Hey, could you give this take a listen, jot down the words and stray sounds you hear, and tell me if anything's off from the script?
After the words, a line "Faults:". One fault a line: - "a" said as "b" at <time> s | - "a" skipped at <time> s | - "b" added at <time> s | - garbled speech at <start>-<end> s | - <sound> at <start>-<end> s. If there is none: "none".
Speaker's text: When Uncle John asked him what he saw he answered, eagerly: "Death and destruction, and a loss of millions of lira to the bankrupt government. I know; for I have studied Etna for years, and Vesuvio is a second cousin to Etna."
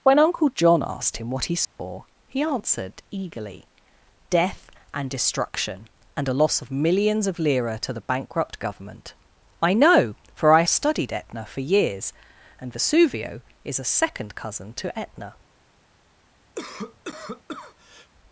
When Uncle John asked him what he saw he answered, eagerly: "Death and destruction, and a loss of millions of lira to the bankrupt government. I know; for I studied Etna for years, and Vesuvio is a second cousin to Etna."
Faults:
- dropout at 1.6-1.8 s
- "have" skipped at 10.6 s
- cough at 16.5-18.1 s